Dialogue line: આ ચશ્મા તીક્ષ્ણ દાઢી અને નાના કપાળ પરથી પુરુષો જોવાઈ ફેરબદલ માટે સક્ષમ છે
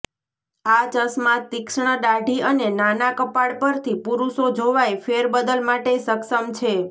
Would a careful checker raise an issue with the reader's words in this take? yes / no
no